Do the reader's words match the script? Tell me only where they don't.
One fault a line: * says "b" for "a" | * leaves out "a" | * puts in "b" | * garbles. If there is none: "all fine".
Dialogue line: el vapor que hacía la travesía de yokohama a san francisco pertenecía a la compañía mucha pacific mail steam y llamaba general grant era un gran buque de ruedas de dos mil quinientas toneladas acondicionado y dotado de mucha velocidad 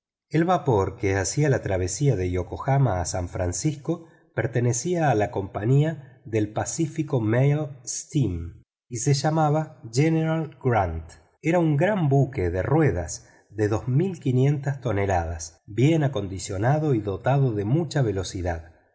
* says "del" for "mucha"
* puts in "se"
* puts in "bien"